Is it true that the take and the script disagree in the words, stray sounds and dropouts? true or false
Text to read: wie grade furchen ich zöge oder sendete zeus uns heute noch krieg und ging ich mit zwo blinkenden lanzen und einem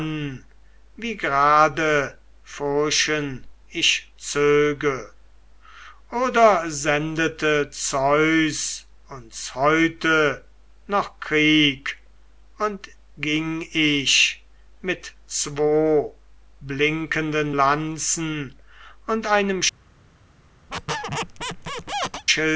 true